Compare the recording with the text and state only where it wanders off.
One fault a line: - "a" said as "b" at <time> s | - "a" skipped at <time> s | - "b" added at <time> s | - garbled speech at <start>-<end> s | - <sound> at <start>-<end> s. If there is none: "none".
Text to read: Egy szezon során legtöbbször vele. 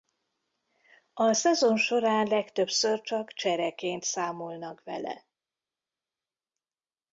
- "Egy" said as "A" at 1.1 s
- "csak csereként számolnak" added at 3.0 s